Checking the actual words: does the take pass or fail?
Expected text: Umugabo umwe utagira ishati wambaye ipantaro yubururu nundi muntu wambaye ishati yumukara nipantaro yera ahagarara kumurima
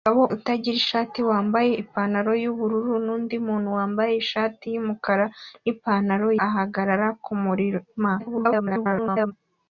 fail